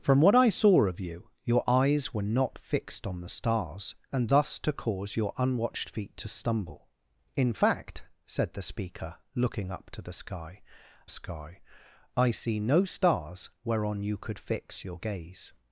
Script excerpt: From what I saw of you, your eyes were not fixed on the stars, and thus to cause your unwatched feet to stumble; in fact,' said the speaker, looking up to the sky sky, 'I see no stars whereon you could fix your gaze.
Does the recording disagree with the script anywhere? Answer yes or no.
no